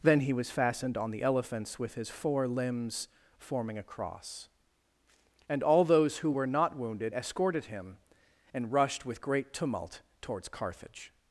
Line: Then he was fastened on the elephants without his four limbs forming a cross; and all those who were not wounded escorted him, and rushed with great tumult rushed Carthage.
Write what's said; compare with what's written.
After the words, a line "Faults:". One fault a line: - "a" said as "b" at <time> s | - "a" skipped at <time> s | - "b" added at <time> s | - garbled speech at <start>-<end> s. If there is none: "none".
Then he was fastened on the elephants with his four limbs forming a cross; and all those who were not wounded escorted him, and rushed with great tumult towards Carthage.
Faults:
- "without" said as "with" at 1.8 s
- "rushed" said as "towards" at 10.2 s